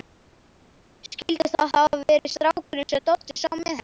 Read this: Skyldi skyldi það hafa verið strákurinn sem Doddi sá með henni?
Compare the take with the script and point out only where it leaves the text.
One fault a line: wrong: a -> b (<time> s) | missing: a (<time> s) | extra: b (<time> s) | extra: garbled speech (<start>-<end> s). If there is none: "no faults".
missing: skyldi (1.5 s)